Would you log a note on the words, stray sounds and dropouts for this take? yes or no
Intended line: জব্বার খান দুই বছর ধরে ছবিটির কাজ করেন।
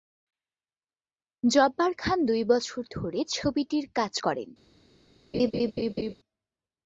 yes